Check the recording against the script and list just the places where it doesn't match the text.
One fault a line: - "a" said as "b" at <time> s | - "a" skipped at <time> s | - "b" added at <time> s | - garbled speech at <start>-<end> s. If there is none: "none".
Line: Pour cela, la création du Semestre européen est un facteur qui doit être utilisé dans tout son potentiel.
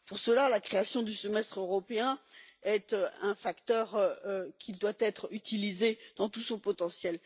none